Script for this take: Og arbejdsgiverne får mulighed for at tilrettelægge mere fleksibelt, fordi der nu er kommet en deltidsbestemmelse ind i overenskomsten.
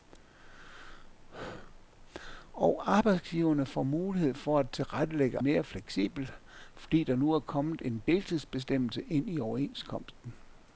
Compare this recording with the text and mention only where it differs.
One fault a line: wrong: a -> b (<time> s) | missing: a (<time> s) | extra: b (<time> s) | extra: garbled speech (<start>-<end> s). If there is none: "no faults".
no faults